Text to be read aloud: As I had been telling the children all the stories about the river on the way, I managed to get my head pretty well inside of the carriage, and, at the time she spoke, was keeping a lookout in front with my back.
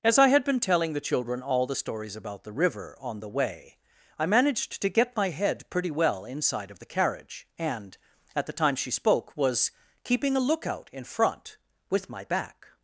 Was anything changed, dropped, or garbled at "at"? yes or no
no